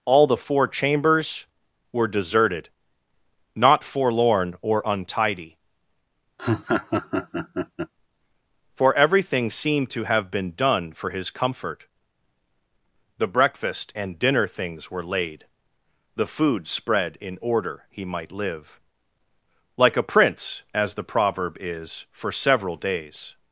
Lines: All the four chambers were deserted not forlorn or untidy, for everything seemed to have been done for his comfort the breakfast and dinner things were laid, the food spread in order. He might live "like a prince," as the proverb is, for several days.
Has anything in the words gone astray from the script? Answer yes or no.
no